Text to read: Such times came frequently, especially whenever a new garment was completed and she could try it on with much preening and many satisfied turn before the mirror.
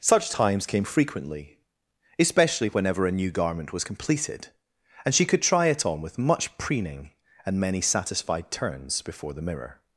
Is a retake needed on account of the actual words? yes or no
yes